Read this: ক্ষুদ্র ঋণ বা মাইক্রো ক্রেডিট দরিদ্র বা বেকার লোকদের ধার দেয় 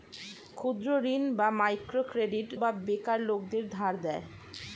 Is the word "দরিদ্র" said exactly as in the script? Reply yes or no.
no